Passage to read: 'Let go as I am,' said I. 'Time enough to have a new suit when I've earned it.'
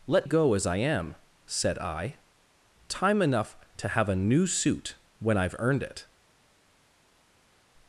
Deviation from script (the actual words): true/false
false